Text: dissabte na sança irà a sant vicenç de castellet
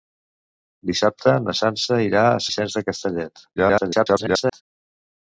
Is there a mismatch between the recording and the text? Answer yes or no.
yes